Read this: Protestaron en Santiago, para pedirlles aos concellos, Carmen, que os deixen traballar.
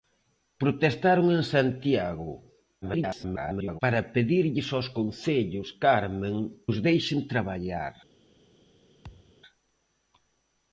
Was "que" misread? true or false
true